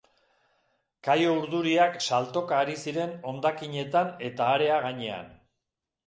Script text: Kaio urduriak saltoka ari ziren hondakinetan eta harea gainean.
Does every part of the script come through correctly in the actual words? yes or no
yes